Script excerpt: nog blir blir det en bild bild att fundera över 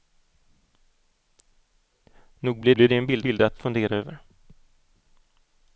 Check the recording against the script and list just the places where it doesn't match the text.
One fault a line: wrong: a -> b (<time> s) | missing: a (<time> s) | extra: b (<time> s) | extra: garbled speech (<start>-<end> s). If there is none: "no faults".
no faults